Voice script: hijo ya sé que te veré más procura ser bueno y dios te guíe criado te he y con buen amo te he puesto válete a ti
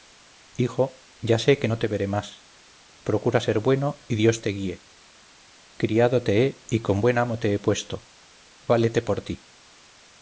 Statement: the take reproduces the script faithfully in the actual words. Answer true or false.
false